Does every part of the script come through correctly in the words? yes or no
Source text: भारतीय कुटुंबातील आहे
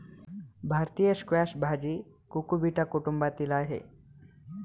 no